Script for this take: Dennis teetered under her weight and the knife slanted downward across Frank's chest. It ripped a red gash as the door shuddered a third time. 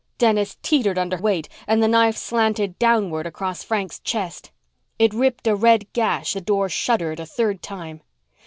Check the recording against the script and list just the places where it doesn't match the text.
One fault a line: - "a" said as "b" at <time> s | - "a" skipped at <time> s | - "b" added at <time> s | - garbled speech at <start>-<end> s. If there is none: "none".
- "her" skipped at 1.2 s
- "as" skipped at 6.3 s